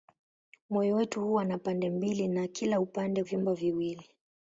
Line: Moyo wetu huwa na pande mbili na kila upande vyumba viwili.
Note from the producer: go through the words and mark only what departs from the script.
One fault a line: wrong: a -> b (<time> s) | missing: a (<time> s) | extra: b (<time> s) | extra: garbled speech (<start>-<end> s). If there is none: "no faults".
no faults